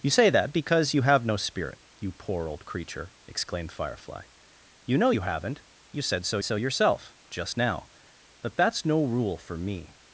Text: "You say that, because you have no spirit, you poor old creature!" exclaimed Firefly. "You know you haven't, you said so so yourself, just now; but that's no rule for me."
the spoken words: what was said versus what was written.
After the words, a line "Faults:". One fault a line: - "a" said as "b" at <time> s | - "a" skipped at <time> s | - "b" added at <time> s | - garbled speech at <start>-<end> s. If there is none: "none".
"You say that, because you have no spirit, you poor old creature!" exclaimed Firefly. "You know you haven't, you said so so yourself, just now; but that's no rule for me."
Faults:
none